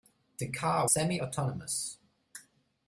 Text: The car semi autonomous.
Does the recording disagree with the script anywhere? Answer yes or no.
no